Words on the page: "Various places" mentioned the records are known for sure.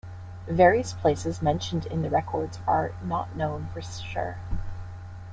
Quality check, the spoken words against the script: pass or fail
fail